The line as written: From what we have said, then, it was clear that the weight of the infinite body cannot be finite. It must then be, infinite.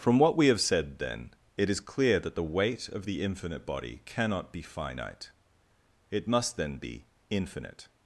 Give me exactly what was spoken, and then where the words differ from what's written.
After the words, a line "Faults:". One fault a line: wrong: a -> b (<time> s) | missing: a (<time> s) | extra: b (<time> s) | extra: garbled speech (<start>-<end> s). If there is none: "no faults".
From what we have said, then, it is clear that the weight of the infinite body cannot be finite. It must then be, infinite.
Faults:
wrong: was -> is (1.7 s)